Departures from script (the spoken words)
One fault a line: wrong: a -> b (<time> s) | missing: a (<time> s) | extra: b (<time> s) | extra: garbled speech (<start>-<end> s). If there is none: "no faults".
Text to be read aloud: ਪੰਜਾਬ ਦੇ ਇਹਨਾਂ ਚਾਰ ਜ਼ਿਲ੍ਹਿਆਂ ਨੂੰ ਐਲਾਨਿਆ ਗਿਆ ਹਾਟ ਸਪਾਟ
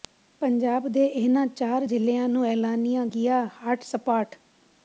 no faults